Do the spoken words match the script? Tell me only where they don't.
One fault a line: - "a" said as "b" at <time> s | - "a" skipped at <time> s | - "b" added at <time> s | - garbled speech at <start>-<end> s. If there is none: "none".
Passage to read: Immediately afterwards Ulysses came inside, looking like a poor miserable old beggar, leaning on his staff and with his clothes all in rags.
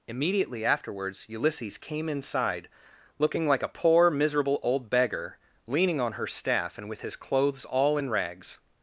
- "his" said as "her" at 6.1 s